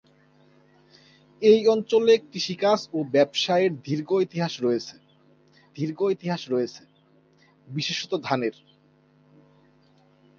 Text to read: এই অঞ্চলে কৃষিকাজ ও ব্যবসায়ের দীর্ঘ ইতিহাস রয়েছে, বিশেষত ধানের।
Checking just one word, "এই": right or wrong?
right